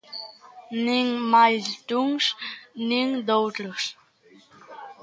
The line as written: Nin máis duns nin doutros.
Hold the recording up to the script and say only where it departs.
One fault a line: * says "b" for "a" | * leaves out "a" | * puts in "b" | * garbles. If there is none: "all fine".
all fine